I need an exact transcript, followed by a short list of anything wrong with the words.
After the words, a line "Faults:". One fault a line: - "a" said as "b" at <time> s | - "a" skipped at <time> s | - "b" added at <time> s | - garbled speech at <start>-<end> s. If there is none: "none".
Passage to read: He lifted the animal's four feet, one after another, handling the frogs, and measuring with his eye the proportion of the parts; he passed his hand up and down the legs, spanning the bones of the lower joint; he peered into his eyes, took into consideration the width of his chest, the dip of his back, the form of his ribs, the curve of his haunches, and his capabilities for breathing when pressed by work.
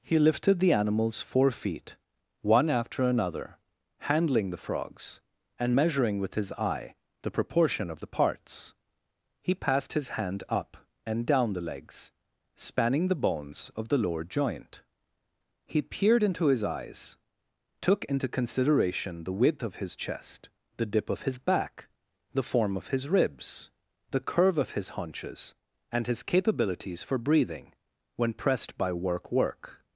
He lifted the animal's four feet, one after another, handling the frogs, and measuring with his eye the proportion of the parts; he passed his hand up and down the legs, spanning the bones of the lower joint; he peered into his eyes, took into consideration the width of his chest, the dip of his back, the form of his ribs, the curve of his haunches, and his capabilities for breathing when pressed by work work.
Faults:
- "work" added at 29.3 s